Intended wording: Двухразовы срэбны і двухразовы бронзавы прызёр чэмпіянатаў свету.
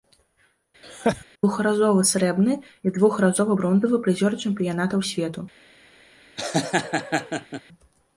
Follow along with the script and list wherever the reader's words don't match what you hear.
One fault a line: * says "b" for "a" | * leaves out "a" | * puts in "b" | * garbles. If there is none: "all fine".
all fine